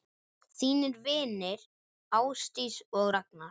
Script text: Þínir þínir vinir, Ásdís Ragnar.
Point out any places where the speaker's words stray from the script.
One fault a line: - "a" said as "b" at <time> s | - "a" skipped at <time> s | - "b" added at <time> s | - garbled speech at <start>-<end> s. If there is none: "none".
- "þínir" skipped at 1.0 s
- "og" added at 3.0 s